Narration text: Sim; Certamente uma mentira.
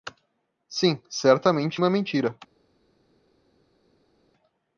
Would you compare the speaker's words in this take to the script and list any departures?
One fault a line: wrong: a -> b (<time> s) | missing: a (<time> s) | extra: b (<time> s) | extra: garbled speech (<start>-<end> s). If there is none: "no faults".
no faults